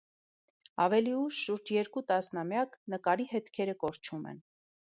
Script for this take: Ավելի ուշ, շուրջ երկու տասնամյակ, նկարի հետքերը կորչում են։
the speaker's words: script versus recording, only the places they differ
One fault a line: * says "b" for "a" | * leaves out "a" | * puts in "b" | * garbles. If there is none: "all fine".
all fine